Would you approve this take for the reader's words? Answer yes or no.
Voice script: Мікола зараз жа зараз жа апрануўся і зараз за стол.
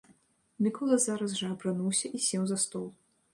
no